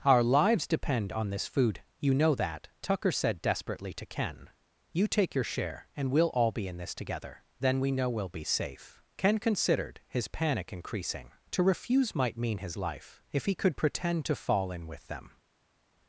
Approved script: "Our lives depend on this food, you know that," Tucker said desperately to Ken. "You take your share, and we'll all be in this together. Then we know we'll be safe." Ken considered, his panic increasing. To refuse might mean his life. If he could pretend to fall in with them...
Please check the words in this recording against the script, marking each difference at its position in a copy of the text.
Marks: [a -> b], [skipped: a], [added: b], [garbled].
"Our lives depend on this food, you know that," Tucker said desperately to Ken. "You take your share, and we'll all be in this together. Then we know we'll be safe." Ken considered, his panic increasing. To refuse might mean his life. If he could pretend to fall in with them...